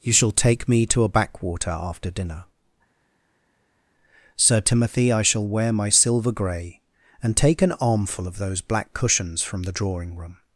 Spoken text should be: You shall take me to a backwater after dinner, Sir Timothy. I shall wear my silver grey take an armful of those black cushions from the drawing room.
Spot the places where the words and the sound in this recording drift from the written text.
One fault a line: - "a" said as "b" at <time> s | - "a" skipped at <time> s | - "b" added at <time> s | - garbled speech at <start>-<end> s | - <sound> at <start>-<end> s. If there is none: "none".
- "and" added at 7.2 s